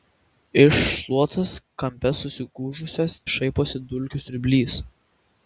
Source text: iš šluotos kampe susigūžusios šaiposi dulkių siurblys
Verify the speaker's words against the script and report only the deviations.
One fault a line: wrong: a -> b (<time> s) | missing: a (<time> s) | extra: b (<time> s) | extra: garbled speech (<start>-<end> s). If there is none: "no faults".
no faults